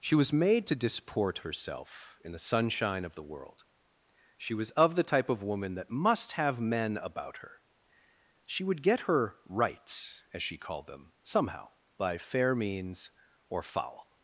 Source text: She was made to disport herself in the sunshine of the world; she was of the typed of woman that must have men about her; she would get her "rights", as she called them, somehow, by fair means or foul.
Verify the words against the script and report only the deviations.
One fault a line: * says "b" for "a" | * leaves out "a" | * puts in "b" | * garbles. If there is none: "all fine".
* says "type" for "typed"